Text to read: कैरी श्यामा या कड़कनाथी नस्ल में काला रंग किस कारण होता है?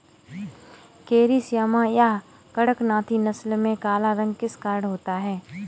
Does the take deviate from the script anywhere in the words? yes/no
no